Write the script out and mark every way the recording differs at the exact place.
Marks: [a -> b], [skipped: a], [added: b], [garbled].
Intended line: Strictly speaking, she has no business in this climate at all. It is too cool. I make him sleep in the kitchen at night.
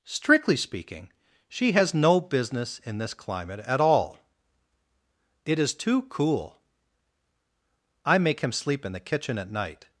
Strictly speaking, she has no business in this climate at all. It is too cool. I make him sleep in the kitchen at night.